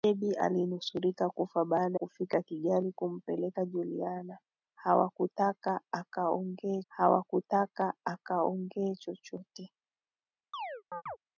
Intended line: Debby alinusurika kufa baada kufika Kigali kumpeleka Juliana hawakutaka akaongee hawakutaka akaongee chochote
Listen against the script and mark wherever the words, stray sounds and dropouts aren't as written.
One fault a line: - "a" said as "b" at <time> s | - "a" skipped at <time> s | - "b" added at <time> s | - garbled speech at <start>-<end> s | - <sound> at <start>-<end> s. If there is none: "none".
- chirp at 10.5-11.2 s